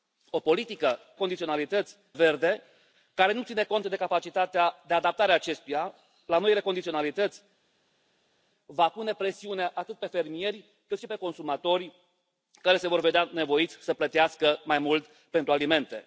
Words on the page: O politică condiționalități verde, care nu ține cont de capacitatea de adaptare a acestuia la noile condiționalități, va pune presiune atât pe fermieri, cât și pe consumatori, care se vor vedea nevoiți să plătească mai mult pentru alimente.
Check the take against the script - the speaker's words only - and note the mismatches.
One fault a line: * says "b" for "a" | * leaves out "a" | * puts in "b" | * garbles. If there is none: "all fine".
all fine